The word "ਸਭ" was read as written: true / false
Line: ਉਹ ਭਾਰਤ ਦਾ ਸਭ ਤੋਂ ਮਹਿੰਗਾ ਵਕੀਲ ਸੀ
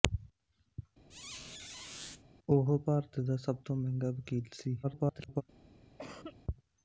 true